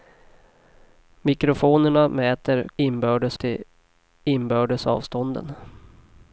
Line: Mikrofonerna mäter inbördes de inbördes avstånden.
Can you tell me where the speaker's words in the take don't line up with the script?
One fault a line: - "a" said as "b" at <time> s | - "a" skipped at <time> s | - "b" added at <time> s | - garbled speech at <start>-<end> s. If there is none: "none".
none